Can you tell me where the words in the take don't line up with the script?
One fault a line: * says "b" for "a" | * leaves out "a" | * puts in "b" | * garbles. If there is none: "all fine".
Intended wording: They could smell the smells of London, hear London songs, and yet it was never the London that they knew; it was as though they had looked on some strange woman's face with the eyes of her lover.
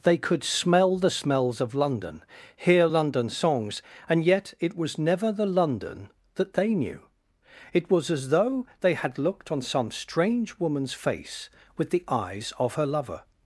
all fine